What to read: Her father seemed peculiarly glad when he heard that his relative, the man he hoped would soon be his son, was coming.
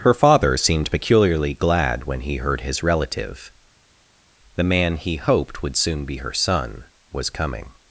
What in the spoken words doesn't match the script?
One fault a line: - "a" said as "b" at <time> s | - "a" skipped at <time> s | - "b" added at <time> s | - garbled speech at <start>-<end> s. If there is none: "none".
- "that" skipped at 2.6 s
- "his" said as "her" at 6.2 s